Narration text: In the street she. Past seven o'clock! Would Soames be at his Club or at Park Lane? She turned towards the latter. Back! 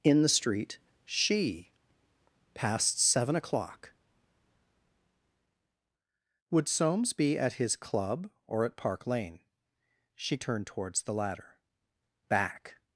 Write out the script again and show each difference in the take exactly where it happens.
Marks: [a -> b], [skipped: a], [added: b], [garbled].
In the street she. Past seven o'clock! Would Soames be at his Club or at Park Lane? She turned towards the latter. Back!